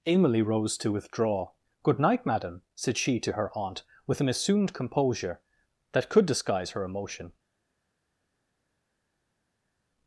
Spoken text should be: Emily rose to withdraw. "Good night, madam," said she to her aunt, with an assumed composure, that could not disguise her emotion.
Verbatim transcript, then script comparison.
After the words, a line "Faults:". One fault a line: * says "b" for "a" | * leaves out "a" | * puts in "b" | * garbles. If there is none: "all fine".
Emily rose to withdraw. "Good night, madam," said she to her aunt, with an assumed composure, that could disguise her emotion.
Faults:
* leaves out "not"